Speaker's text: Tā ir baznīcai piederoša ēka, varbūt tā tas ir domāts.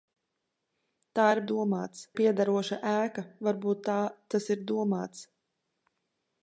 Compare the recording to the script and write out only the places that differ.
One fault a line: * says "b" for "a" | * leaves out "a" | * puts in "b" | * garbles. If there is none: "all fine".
* says "domāts" for "baznīcai"